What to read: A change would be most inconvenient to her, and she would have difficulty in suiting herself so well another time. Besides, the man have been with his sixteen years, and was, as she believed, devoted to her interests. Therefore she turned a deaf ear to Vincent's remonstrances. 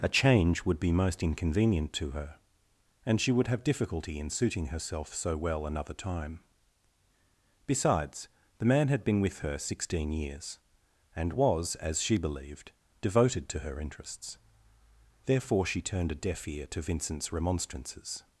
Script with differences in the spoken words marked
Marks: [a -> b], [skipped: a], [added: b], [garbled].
A change would be most inconvenient to her, and she would have difficulty in suiting herself so well another time. Besides, the man [have -> had] been with [his -> her] sixteen years, and was, as she believed, devoted to her interests. Therefore she turned a deaf ear to Vincent's remonstrances.